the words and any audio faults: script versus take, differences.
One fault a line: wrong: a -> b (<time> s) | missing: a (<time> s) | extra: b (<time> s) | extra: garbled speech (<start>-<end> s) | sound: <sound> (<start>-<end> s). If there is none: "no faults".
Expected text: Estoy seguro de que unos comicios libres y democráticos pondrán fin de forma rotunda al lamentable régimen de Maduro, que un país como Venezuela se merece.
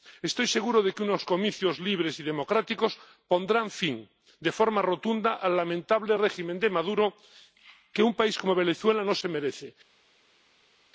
extra: no (9.0 s)